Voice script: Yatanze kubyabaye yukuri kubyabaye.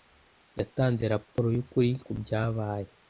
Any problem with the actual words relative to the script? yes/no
yes